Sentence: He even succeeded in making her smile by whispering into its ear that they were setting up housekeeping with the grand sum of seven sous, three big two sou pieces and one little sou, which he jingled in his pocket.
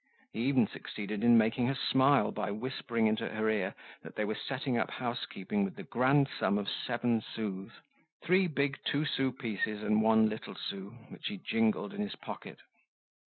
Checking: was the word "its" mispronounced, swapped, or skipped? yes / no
yes